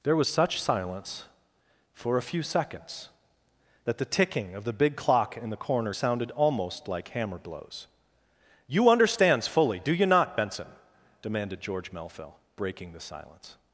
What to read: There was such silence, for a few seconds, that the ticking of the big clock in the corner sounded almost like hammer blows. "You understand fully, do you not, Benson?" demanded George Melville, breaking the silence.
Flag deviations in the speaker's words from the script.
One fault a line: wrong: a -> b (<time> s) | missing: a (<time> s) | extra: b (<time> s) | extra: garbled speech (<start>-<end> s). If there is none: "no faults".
wrong: understand -> understands (8.9 s)